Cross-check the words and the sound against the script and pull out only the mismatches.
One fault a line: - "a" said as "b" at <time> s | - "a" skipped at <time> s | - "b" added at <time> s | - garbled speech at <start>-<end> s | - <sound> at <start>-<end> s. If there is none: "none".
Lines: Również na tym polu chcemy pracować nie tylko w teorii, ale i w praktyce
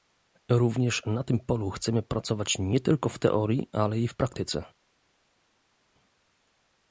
none